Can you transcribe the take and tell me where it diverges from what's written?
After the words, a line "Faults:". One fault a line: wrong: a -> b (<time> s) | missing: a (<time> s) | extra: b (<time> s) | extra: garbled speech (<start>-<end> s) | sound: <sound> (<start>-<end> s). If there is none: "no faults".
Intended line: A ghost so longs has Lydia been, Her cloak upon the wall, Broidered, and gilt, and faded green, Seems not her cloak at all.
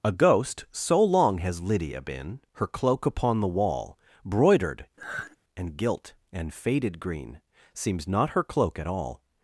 A ghost so long has Lydia been, Her cloak upon the wall, Broidered, and gilt, and faded green, Seems not her cloak at all.
Faults:
wrong: longs -> long (1.0 s)
sound: sigh (5.0-5.4 s)